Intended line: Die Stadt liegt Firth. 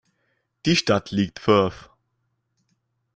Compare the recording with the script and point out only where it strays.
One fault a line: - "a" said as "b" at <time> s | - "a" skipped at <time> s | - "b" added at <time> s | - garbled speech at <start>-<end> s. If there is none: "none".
none